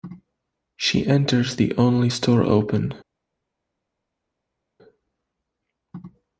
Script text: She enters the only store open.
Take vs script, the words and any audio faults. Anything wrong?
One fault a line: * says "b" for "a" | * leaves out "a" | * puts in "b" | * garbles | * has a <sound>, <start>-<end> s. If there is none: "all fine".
all fine